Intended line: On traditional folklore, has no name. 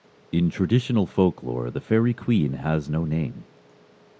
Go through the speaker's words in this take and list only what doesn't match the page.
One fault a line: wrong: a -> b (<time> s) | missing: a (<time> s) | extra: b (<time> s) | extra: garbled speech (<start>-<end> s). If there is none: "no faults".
wrong: On -> In (0.3 s)
extra: the fairy queen (1.7 s)